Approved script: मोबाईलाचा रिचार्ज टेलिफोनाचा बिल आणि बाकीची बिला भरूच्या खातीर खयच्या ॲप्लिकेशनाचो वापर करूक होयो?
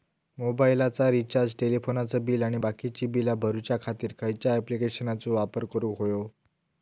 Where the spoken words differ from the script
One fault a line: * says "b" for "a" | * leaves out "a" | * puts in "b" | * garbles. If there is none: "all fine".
all fine